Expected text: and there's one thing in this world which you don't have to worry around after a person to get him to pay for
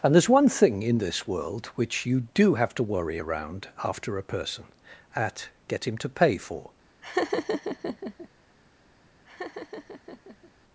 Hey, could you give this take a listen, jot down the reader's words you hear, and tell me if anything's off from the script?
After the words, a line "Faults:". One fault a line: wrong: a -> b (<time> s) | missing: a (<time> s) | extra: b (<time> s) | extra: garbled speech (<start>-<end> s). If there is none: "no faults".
and there's one thing in this world which you do have to worry around after a person at get him to pay for
Faults:
wrong: don't -> do (2.3 s)
wrong: to -> at (5.1 s)